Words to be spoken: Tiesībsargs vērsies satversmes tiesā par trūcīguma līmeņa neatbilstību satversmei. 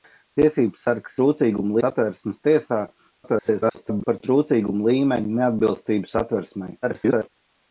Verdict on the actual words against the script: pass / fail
fail